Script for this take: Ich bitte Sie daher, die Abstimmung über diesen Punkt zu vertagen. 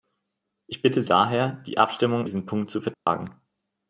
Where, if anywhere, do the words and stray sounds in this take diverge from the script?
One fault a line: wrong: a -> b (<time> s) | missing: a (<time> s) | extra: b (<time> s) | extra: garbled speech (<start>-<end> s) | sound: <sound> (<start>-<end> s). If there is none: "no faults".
missing: Sie (1.0 s)
missing: über (2.3 s)
sound: dropout (2.9-3.1 s)